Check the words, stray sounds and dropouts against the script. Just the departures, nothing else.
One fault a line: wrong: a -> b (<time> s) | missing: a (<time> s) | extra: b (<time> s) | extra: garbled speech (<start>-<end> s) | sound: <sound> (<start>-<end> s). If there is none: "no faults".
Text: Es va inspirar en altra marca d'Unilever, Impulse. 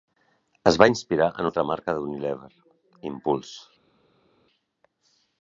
no faults